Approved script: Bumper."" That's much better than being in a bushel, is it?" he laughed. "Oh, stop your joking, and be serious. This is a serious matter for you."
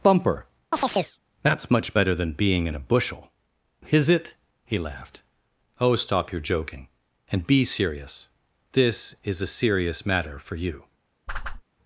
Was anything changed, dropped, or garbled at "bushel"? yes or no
no